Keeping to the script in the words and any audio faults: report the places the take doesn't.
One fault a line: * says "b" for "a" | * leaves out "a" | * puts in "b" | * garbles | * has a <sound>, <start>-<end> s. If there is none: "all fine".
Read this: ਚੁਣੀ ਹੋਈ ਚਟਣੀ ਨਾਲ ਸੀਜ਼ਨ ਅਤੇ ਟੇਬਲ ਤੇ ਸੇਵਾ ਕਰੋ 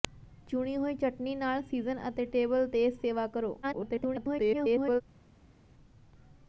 * garbles